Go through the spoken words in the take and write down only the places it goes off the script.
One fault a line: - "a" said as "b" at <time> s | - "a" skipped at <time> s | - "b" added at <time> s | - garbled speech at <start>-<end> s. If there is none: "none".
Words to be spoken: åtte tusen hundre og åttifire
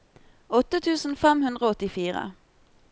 - "fem" added at 1.2 s